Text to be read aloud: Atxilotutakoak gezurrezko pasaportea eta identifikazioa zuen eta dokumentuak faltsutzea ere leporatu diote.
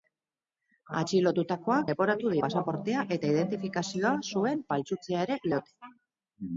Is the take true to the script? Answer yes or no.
no